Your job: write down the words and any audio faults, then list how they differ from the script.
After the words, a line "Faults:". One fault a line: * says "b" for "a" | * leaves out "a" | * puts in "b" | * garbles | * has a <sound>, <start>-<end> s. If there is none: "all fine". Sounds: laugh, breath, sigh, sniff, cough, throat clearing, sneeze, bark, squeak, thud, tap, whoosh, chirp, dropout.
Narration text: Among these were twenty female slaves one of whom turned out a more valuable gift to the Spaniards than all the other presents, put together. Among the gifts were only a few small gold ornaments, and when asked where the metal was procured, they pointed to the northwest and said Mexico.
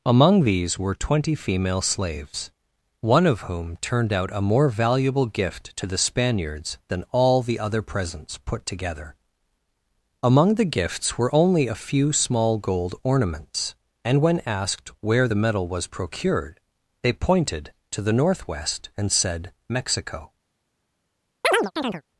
Among these were twenty female slaves one of whom turned out a more valuable gift to the Spaniards than all the other presents, put together. Among the gifts were only a few small gold ornaments, and when asked where the metal was procured, they pointed to the northwest and said Mexico.
Faults:
* has a chirp, 21.4-22.0 s